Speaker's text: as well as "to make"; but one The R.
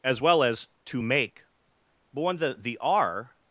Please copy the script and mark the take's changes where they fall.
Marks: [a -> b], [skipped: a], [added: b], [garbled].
as well as "to make"; but [one -> when the] The R.